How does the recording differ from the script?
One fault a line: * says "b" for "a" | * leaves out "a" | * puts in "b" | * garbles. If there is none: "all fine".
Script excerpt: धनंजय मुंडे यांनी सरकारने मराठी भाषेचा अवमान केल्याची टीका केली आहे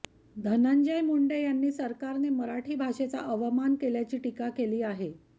all fine